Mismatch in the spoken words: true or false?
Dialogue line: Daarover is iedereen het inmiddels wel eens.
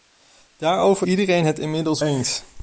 true